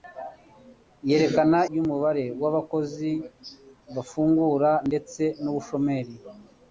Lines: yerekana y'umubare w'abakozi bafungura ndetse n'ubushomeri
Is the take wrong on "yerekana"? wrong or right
right